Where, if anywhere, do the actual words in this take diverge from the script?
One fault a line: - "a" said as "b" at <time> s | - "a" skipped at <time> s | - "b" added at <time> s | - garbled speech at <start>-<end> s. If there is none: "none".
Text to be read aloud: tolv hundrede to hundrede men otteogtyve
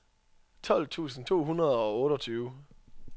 - "hundrede" said as "tusind" at 0.9 s
- "men" said as "og" at 1.8 s